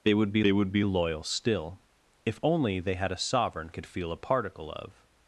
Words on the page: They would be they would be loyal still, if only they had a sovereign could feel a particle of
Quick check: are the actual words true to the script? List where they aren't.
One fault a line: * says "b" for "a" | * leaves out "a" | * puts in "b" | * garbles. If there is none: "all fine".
all fine